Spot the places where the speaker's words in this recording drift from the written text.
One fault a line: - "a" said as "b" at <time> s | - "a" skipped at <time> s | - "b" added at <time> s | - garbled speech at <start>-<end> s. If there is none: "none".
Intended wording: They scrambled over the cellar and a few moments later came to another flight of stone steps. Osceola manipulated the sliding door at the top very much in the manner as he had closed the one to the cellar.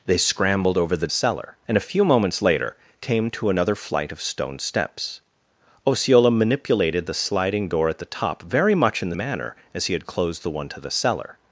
none